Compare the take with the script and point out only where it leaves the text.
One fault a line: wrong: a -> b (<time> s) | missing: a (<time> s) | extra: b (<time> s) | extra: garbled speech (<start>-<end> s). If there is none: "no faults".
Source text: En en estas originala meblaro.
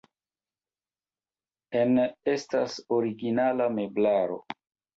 missing: en (2.0 s)